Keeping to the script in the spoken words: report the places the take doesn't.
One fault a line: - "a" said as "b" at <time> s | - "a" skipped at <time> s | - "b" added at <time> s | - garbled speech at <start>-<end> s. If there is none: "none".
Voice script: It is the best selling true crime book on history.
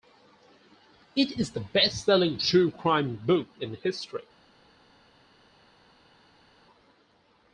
- "on" said as "in" at 3.6 s